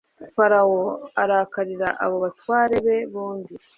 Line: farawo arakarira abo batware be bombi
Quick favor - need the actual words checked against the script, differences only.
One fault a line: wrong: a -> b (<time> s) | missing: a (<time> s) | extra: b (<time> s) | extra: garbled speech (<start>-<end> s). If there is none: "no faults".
no faults